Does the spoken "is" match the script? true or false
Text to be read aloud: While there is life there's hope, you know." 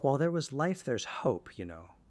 false